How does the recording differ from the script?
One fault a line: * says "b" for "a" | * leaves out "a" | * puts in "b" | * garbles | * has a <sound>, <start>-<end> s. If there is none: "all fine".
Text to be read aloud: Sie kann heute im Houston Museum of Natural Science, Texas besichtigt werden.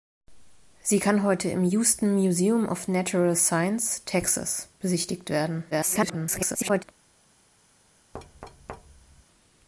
* garbles
* has a thud, 8.1-9.2 s